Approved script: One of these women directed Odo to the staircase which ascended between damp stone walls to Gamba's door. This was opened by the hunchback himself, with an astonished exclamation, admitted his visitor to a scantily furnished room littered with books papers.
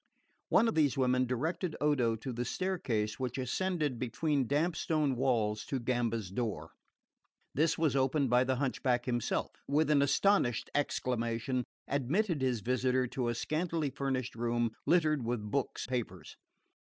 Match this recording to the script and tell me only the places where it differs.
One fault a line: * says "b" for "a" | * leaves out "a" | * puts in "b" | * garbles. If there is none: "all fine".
all fine